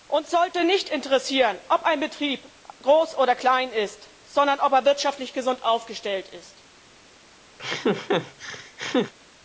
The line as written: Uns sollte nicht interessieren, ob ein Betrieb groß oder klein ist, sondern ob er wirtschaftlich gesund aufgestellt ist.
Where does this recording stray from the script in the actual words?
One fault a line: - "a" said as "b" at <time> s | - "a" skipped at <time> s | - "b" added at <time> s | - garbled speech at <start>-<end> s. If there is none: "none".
none